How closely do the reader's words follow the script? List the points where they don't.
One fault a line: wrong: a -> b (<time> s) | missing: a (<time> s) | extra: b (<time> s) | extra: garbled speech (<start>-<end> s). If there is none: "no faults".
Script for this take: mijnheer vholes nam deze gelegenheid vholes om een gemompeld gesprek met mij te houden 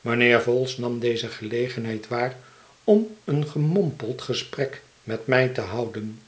wrong: vholes -> waar (2.1 s)